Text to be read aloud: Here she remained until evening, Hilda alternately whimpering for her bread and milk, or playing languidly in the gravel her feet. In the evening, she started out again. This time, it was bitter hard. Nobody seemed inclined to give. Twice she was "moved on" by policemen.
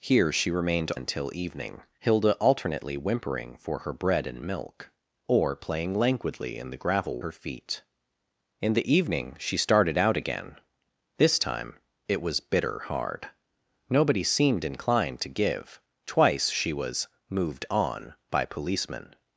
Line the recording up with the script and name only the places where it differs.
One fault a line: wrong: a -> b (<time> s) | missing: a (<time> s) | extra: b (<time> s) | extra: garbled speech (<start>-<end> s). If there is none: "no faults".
no faults